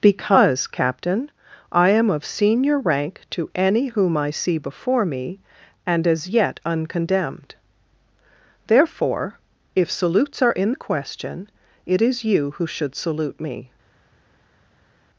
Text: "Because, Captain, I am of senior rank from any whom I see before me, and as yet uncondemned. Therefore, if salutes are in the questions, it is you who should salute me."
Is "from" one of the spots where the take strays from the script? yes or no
yes